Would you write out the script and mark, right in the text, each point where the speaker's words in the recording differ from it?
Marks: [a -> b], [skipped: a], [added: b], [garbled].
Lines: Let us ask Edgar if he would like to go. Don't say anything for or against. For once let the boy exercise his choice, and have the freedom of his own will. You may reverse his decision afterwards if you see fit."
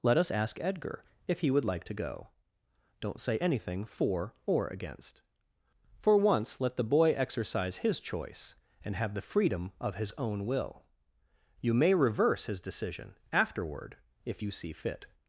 Let us ask Edgar if he would like to go. Don't say anything for or against. For once let the boy exercise his choice, and have the freedom of his own will. You may reverse his decision [afterwards -> afterward] if you see fit."